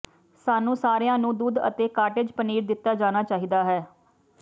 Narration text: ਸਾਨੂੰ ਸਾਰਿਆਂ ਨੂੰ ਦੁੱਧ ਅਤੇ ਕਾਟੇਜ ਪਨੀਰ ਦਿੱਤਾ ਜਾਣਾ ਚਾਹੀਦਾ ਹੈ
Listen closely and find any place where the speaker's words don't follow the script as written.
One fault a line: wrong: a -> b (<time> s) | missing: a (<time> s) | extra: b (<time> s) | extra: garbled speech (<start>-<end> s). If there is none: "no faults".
no faults